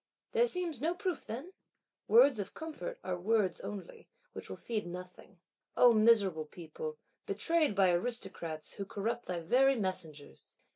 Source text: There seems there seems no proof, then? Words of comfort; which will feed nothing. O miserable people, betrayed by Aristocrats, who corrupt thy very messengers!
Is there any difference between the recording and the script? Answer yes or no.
yes